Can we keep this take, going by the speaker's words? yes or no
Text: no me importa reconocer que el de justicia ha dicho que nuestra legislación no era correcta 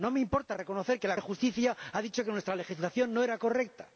yes